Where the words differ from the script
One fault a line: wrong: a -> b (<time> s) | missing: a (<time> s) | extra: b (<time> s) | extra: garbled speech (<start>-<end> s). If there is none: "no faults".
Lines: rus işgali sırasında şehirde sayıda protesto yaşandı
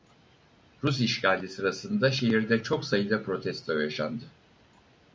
extra: çok (2.6 s)